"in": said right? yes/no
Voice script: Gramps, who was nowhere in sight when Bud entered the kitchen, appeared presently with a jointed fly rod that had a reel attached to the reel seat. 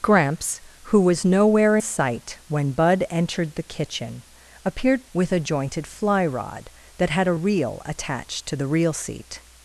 no